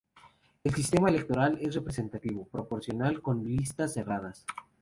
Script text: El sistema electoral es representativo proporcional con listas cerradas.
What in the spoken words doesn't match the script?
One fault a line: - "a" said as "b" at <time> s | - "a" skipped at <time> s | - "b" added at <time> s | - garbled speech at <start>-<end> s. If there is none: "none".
none